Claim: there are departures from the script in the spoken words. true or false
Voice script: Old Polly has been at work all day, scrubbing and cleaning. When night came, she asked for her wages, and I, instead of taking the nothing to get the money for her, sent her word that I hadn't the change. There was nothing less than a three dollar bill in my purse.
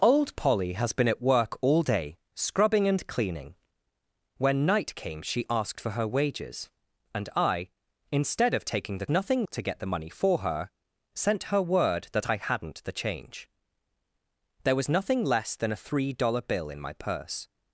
false